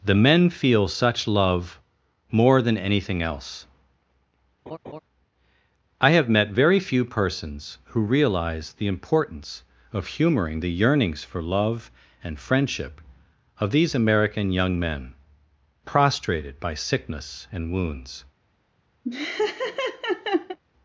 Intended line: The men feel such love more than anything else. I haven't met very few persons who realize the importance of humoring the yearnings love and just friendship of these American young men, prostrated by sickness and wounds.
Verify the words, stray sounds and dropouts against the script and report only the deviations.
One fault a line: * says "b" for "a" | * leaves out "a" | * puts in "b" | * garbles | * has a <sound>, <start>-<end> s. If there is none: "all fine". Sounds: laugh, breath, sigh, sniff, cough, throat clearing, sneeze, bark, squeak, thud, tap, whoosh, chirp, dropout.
* has a laugh, 4.7-5.0 s
* says "have" for "haven't"
* puts in "for"
* leaves out "just"
* has a laugh, 19.0-20.6 s